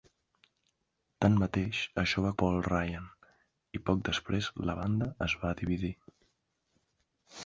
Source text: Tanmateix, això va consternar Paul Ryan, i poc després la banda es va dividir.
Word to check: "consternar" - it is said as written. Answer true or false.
false